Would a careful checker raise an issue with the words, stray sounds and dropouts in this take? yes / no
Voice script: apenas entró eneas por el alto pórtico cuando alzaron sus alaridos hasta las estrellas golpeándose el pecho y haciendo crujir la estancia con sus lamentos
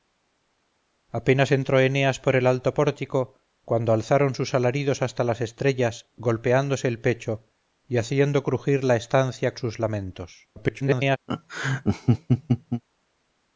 yes